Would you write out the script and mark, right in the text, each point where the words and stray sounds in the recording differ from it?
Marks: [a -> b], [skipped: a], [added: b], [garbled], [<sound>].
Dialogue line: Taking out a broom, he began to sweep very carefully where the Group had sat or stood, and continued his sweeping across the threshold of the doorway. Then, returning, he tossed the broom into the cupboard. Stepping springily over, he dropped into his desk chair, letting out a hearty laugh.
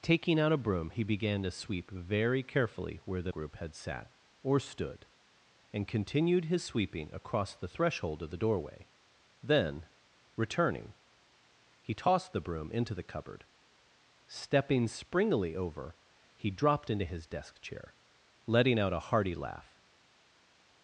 Taking out a broom, he began to sweep very carefully where the Group had sat or stood, and continued his sweeping across the threshold of the doorway. Then, returning, he tossed the broom into the cupboard. Stepping springily over, he dropped into his desk chair, letting out a hearty laugh.